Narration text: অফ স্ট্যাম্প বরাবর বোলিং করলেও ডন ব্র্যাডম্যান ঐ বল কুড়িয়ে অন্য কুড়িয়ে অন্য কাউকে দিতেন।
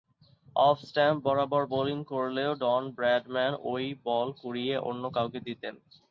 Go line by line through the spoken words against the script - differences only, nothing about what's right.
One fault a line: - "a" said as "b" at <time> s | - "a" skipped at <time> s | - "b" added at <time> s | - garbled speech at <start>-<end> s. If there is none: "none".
- "কুড়িয়ে অন্য" skipped at 5.0 s